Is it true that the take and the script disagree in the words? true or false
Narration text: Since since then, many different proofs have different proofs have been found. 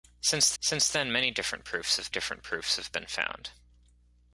false